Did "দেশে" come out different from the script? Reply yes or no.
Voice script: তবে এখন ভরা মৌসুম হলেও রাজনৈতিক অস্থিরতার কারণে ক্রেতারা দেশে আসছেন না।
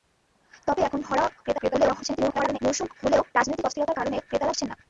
yes